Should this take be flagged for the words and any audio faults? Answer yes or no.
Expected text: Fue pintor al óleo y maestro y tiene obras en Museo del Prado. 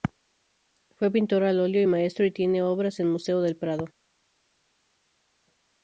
no